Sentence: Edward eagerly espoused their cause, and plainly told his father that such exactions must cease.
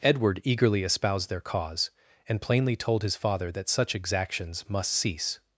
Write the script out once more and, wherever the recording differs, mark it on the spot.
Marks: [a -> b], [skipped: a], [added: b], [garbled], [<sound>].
Edward eagerly espoused their cause, and plainly told his father that such exactions must cease.